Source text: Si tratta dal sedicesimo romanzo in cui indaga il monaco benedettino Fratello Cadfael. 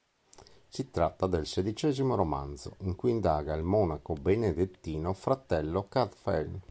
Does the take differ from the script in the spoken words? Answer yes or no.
yes